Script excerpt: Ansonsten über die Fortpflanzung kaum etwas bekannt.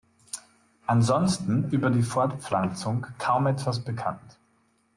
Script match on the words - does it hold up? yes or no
yes